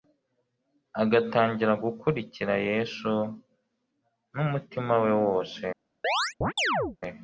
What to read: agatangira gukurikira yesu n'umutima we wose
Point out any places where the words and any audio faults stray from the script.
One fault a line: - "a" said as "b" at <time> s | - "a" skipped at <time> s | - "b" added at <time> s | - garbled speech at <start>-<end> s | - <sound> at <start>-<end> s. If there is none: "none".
- chirp at 6.0-7.0 s